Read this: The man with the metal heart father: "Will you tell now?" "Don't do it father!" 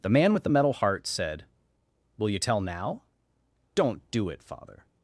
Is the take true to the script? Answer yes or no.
no